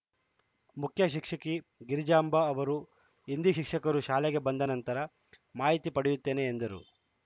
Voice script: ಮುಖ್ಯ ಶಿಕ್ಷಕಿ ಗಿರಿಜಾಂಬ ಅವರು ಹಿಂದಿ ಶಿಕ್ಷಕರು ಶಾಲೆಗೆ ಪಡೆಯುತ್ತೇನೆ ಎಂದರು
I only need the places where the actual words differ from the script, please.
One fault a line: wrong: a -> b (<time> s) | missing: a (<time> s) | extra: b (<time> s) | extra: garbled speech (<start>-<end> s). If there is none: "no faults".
extra: ಬಂದ ನಂತರ ಮಾಹಿತಿ (4.4 s)